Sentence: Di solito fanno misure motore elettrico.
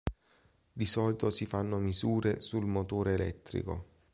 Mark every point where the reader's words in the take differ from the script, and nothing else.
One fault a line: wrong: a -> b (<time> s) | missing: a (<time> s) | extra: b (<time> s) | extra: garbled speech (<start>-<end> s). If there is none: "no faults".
extra: si (1.3 s)
extra: sul (2.4 s)